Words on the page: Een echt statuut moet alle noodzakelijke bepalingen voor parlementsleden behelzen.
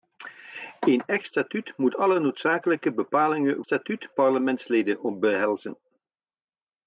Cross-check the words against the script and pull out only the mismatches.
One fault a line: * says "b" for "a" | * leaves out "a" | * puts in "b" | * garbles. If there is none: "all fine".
* says "statuut" for "voor"